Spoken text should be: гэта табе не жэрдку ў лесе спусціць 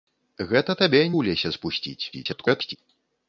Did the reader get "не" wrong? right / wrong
wrong